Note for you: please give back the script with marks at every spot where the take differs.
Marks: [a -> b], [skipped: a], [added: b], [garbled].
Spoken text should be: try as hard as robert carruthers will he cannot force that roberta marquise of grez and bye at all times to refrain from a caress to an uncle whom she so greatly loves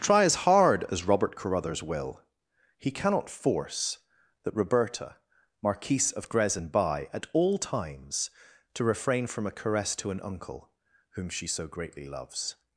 try as hard as robert carruthers will he cannot force that roberta marquise of grez and bye at all times to refrain from a caress to an uncle whom she so greatly loves